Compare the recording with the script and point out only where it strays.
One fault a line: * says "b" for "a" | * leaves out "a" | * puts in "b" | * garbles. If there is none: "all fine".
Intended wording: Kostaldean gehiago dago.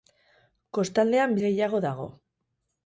all fine